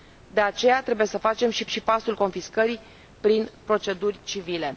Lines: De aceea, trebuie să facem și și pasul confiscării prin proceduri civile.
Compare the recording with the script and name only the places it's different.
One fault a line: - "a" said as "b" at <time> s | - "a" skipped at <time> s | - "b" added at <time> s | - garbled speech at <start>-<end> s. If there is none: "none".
none